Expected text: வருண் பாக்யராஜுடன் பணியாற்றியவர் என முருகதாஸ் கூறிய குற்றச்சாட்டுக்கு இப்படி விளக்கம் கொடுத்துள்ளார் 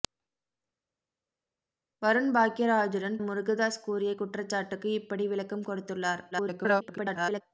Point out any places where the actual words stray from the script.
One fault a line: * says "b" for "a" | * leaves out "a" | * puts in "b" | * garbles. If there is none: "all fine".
* leaves out "பணியாற்றியவர் என"
* garbles